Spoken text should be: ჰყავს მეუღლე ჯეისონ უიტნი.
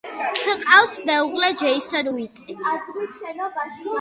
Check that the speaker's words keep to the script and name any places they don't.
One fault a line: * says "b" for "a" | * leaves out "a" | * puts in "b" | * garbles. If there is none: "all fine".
all fine